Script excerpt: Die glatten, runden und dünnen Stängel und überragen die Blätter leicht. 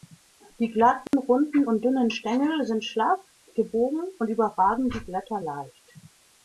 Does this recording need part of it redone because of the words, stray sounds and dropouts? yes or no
yes